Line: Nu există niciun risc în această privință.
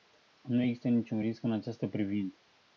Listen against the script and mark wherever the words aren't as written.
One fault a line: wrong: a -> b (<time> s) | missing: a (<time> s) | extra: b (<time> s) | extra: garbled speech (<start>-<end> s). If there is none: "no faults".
no faults